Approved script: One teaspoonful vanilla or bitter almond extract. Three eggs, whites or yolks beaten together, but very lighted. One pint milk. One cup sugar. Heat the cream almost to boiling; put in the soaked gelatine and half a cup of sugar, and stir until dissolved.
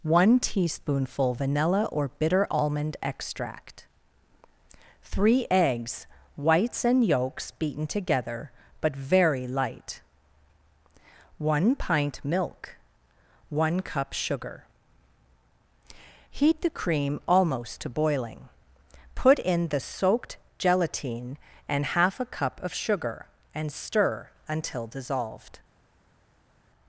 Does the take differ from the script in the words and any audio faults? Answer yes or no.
yes